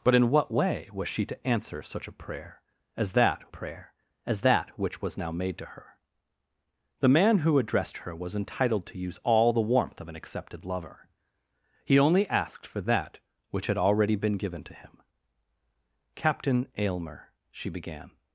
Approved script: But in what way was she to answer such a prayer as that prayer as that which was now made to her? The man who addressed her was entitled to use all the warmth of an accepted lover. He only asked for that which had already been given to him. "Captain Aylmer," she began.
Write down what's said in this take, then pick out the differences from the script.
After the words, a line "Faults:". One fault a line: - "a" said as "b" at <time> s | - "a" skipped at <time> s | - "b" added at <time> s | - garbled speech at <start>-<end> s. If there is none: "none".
But in what way was she to answer such a prayer as that prayer as that which was now made to her? The man who addressed her was entitled to use all the warmth of an accepted lover. He only asked for that which had already been given to him. "Captain Aylmer," she began.
Faults:
none